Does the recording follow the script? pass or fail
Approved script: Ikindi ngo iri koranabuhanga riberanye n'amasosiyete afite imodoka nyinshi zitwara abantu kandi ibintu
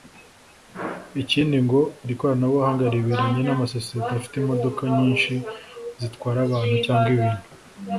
fail